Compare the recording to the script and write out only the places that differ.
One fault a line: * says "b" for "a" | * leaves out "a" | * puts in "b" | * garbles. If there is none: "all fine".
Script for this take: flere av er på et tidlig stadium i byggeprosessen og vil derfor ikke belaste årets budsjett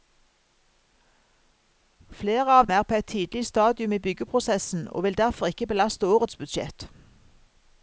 all fine